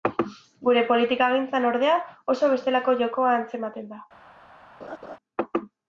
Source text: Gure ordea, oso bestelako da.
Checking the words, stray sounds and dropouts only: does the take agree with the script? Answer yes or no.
no